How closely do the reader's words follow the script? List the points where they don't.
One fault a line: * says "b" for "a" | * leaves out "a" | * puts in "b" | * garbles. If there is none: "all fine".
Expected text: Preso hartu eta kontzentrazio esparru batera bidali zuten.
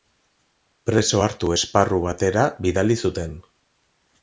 * leaves out "eta kontzentrazio"